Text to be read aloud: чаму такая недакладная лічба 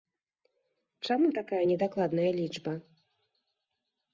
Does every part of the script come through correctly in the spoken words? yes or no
yes